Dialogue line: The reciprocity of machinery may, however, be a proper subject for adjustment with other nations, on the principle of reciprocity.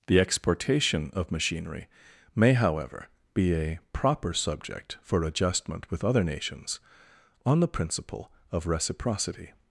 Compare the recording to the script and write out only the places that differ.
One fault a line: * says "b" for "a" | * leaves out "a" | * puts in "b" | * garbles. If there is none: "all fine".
* says "exportation" for "reciprocity"